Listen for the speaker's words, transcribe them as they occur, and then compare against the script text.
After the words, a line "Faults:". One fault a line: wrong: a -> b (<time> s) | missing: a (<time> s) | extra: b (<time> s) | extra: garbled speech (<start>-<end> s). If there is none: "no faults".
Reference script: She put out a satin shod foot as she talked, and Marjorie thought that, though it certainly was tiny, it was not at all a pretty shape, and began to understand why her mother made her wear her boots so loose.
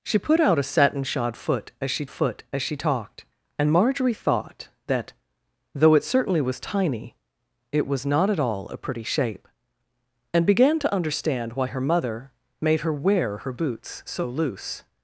She put out a satin shod foot as she foot as she talked, and Marjorie thought that, though it certainly was tiny, it was not at all a pretty shape, and began to understand why her mother made her wear her boots so loose.
Faults:
extra: foot as she (2.1 s)